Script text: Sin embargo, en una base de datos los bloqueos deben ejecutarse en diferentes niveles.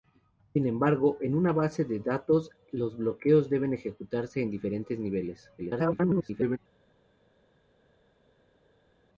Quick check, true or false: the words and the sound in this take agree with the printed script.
false